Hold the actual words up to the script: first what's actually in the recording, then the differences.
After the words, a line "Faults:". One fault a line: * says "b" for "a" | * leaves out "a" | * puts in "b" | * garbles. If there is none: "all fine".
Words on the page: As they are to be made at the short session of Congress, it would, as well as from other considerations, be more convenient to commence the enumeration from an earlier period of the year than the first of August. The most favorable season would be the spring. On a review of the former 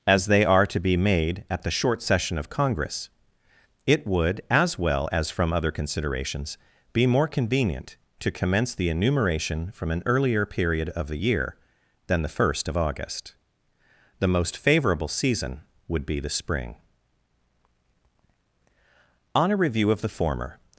As they are to be made at the short session of Congress, it would, as well as from other considerations, be more convenient to commence the enumeration from an earlier period of the year than the first of August. The most favorable season would be the spring. On a review of the former
Faults:
all fine